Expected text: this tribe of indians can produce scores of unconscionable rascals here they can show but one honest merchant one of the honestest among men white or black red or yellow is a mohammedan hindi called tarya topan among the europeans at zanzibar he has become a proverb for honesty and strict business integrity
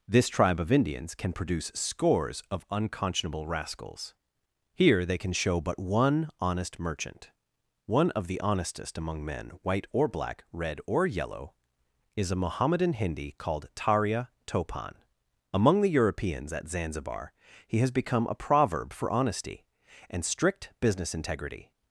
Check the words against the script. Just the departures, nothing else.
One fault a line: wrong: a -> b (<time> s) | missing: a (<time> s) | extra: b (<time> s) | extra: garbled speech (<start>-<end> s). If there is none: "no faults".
no faults